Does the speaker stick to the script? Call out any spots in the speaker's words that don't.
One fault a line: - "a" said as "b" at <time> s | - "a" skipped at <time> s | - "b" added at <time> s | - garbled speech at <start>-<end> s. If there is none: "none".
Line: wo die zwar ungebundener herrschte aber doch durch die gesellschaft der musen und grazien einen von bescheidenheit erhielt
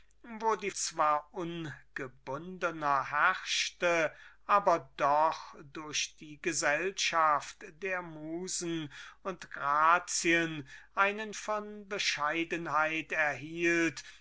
none